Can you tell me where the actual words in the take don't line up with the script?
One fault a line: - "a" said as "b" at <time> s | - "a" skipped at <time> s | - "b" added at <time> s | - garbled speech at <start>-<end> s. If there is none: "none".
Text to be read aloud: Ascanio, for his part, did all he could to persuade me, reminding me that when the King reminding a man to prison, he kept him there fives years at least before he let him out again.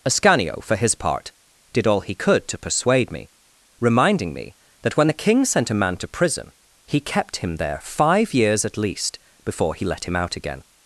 - "reminding" said as "sent" at 5.4 s
- "fives" said as "five" at 7.8 s